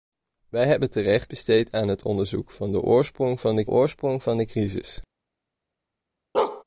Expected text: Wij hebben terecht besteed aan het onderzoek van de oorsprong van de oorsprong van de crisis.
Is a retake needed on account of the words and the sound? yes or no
yes